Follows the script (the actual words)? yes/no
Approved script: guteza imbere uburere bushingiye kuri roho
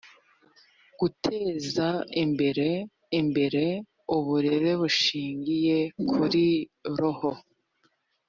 no